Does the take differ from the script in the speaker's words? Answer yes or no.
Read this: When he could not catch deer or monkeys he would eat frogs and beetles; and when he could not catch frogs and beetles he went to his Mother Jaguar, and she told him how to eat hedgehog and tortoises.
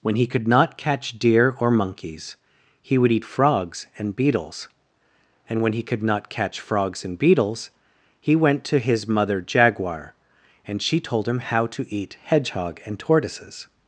no